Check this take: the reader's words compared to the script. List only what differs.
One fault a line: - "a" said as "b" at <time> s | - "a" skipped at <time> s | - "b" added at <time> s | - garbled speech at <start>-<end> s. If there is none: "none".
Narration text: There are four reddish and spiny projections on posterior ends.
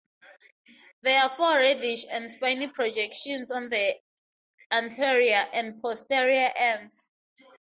- "the anterior and" added at 3.7 s